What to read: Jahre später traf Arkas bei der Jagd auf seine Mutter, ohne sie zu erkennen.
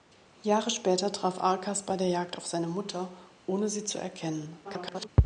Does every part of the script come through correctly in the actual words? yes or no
no